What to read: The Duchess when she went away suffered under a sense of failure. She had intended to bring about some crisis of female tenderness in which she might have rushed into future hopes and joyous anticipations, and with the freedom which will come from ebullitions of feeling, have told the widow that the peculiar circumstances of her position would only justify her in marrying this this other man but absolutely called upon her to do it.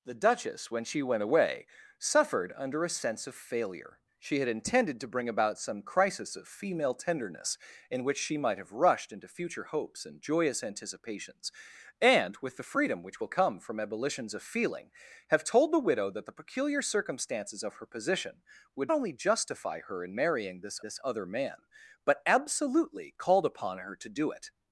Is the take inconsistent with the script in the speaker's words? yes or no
no